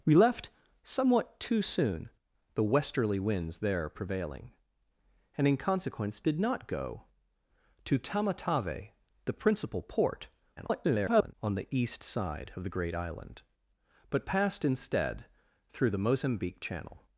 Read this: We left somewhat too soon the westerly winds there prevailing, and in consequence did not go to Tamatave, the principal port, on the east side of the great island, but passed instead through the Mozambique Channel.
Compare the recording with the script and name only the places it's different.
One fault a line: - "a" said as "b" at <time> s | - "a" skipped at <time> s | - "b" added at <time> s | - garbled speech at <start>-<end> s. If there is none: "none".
- garbled speech at 10.6-11.3 s